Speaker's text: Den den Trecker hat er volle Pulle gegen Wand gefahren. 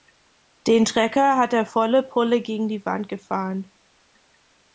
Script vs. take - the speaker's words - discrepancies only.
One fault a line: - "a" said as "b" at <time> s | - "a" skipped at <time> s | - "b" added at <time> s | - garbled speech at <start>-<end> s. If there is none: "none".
- "den" skipped at 0.8 s
- "die" added at 2.7 s